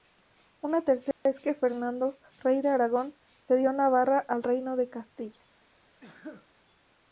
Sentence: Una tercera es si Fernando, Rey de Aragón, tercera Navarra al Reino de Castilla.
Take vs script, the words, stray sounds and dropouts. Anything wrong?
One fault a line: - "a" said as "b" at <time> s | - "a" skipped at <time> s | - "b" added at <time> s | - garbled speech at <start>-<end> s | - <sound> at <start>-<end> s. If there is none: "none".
- dropout at 1.1-1.3 s
- "si" said as "que" at 1.4 s
- "tercera" said as "cedió" at 3.4 s
- sneeze at 6.0-6.5 s